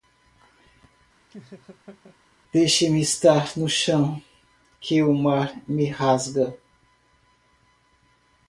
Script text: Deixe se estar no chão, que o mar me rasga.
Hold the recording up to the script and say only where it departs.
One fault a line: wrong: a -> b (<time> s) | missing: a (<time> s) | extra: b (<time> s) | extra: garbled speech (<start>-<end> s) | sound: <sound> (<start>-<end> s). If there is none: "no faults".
sound: laugh (1.3-2.2 s)
wrong: se -> me (2.9 s)